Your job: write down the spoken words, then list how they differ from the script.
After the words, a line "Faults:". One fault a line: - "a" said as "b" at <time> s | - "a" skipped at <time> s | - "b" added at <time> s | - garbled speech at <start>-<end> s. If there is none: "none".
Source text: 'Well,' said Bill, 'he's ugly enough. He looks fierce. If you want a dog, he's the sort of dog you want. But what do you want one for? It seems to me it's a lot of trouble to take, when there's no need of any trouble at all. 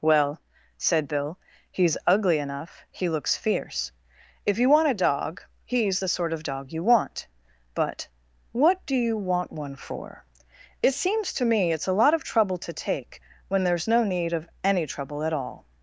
'Well,' said Bill, 'he's ugly enough. He looks fierce. If you want a dog, he's the sort of dog you want. But what do you want one for? It seems to me it's a lot of trouble to take, when there's no need of any trouble at all.
Faults:
none